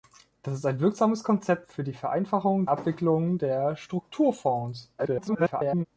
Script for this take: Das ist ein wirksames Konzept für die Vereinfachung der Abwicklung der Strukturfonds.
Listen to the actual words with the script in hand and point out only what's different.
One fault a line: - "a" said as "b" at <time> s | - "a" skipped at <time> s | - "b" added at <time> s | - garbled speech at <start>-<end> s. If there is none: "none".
- "der" skipped at 2.6 s
- garbled speech at 5.0-5.9 s